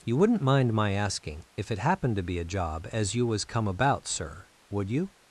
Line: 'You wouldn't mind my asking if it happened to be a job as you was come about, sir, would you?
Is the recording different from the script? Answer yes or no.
no